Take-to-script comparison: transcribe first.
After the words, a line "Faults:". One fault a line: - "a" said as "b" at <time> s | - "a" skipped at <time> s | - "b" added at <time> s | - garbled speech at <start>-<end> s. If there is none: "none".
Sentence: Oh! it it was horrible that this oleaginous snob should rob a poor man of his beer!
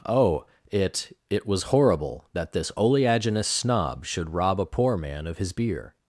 Oh! it it was horrible that this oleaginous snob should rob a poor man of his beer!
Faults:
none